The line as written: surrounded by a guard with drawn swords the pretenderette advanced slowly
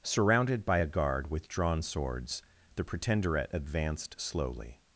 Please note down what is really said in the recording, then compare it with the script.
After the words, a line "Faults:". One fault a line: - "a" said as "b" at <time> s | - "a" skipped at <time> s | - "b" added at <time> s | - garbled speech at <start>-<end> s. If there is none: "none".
surrounded by a guard with drawn swords the pretenderette advanced slowly
Faults:
none